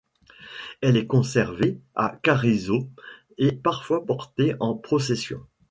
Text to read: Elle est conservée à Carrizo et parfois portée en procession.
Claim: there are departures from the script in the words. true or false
false